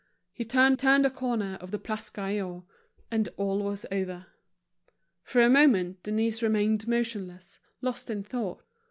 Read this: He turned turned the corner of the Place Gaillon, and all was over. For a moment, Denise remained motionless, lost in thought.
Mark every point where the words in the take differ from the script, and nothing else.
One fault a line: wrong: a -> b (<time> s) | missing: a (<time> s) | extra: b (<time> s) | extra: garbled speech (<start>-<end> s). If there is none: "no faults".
no faults